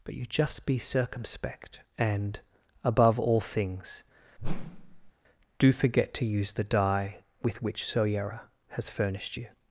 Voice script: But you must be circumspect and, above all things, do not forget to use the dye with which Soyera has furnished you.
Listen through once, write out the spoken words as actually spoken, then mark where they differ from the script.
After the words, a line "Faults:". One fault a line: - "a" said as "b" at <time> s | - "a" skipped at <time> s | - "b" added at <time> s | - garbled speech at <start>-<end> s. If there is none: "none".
But you just be circumspect and, above all things, do forget to use the dye with which Soyera has furnished you.
Faults:
- "must" said as "just" at 0.2 s
- "not" skipped at 5.7 s